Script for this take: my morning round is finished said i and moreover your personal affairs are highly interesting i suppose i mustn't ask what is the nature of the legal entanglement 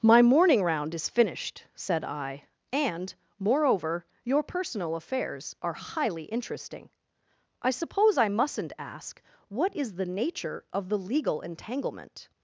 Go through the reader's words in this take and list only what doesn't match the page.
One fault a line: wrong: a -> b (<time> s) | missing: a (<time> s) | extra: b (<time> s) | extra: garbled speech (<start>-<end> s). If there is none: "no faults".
no faults